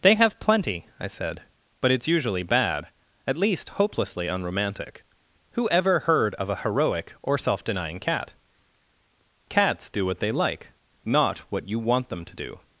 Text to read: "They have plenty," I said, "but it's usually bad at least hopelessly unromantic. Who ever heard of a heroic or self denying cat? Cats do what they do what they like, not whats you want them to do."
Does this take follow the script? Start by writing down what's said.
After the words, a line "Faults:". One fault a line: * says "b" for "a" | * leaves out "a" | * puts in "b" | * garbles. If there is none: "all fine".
"They have plenty," I said, "but it's usually bad at least hopelessly unromantic. Who ever heard of a heroic or self denying cat? Cats do what they like, not what you want them to do."
Faults:
* leaves out "do what they"
* says "what" for "whats"